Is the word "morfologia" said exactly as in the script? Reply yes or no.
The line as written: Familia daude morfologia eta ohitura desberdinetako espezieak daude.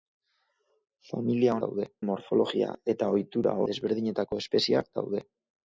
yes